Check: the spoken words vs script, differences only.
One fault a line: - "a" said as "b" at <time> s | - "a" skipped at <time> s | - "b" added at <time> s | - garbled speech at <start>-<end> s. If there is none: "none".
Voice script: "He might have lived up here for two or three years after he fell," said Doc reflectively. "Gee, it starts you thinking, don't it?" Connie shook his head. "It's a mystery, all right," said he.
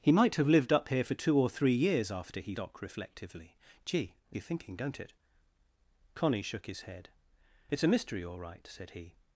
- "fell said" skipped at 2.5 s
- "starts" skipped at 4.4 s